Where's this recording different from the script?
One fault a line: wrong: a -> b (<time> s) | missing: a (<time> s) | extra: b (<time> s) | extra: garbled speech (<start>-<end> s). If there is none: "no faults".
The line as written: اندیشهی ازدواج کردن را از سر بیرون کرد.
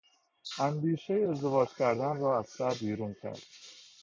no faults